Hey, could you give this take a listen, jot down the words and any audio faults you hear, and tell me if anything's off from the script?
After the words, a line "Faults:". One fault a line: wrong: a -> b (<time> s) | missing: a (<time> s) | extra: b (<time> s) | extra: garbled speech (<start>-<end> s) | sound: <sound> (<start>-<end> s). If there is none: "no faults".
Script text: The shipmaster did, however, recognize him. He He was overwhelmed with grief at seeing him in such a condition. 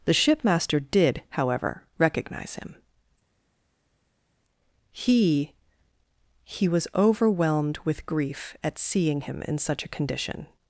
The shipmaster did, however, recognize him. He He was overwhelmed with grief at seeing him in such a condition.
Faults:
no faults